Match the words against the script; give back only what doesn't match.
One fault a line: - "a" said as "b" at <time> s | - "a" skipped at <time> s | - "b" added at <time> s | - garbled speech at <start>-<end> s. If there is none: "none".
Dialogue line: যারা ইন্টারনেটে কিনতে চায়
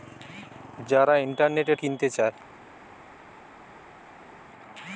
none